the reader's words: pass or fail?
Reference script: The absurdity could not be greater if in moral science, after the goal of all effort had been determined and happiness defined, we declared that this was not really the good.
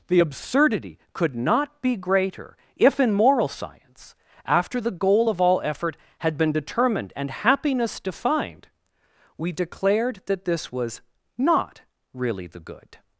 pass